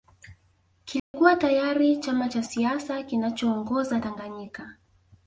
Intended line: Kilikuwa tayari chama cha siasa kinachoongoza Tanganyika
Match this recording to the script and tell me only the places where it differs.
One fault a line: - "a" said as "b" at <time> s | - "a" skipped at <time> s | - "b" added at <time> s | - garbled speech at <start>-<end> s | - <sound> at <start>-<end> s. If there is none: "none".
- dropout at 1.0-1.1 s